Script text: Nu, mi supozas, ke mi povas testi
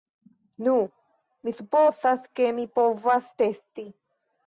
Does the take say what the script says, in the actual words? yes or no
yes